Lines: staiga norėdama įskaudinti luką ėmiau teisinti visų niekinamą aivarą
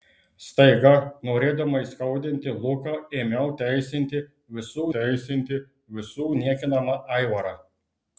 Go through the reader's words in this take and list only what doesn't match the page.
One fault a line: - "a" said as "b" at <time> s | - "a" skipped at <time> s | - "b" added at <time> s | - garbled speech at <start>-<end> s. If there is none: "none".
- "teisinti visų" added at 5.0 s